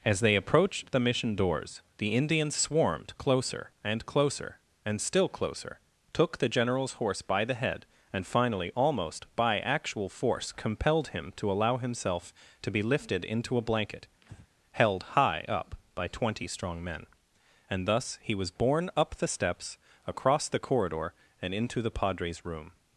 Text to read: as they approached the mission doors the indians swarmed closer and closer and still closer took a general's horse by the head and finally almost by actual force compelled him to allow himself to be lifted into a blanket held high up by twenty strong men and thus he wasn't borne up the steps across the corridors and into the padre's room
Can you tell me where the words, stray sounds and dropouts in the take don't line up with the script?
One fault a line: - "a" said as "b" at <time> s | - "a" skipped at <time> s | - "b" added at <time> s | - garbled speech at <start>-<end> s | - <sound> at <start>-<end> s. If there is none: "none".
- "a" said as "the" at 6.4 s
- breath at 14.2-14.5 s
- "wasn't" said as "was" at 18.3 s
- "corridors" said as "corridor" at 20.6 s